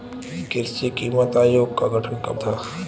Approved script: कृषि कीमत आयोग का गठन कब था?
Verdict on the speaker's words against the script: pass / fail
pass